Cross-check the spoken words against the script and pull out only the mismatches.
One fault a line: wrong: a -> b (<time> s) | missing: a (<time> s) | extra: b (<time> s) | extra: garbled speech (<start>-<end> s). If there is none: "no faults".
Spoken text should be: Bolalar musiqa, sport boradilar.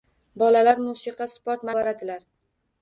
no faults